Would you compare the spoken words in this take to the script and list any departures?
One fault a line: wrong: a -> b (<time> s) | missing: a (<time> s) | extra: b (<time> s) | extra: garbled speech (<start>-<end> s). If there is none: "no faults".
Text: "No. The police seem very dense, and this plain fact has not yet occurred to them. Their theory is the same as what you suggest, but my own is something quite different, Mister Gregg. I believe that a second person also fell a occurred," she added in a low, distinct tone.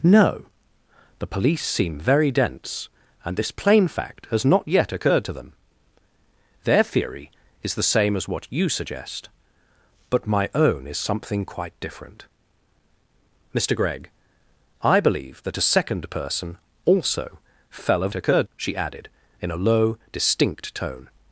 no faults